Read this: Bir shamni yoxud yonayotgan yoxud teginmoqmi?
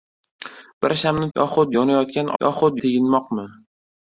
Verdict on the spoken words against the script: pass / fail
pass